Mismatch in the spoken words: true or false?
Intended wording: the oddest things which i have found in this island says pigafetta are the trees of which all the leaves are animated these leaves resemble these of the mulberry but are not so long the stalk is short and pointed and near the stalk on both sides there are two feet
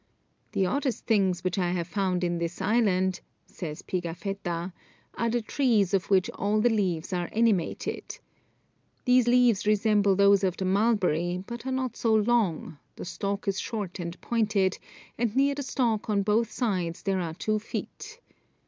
true